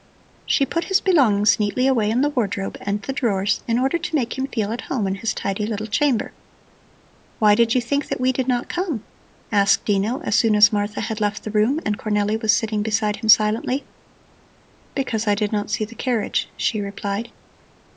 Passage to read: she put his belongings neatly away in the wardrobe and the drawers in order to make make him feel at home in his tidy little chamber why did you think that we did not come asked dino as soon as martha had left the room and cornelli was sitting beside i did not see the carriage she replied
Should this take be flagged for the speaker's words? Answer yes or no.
yes